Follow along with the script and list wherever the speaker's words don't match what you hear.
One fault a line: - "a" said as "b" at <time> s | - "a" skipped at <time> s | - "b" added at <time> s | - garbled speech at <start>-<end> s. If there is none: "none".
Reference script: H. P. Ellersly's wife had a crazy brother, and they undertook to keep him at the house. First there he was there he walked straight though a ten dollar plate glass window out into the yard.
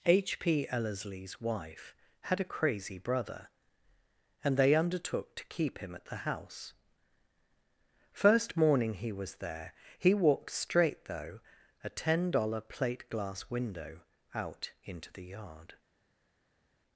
- "there" said as "morning" at 8.6 s